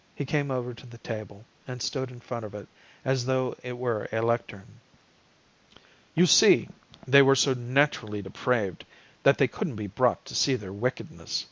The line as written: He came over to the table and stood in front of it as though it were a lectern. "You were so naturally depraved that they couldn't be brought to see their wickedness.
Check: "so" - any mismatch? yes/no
no